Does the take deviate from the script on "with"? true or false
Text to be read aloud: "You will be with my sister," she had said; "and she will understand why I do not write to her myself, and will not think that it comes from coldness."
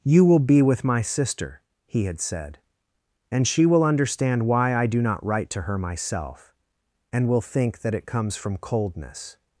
false